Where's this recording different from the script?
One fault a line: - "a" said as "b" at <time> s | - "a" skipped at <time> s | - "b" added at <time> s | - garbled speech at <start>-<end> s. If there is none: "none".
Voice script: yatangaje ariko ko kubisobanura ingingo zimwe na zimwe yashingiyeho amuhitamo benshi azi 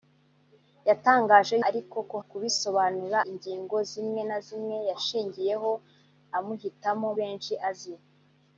none